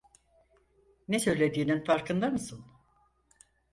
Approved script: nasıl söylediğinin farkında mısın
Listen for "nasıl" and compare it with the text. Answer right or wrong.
wrong